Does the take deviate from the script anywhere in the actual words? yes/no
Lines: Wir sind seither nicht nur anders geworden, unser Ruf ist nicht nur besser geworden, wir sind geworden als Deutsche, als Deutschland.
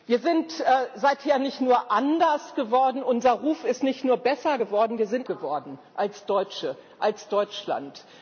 no